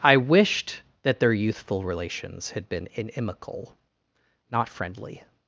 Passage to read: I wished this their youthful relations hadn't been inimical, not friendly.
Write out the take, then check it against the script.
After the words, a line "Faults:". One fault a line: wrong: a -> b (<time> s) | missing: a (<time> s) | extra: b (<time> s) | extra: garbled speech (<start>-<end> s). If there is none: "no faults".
I wished that their youthful relations had been inimical, not friendly.
Faults:
wrong: this -> that (1.0 s)
wrong: hadn't -> had (2.5 s)